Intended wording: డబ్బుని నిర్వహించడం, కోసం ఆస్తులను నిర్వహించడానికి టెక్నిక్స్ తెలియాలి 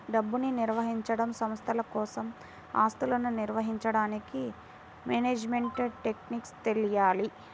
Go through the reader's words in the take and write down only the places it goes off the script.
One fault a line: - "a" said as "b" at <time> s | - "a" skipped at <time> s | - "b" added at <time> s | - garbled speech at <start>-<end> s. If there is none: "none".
- "సంస్థల" added at 1.3 s
- "మేనేజ్మెంట్" added at 5.0 s